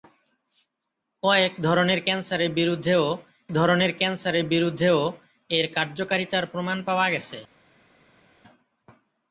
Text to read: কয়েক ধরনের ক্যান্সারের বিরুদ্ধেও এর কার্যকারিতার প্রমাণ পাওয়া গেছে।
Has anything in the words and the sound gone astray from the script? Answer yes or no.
yes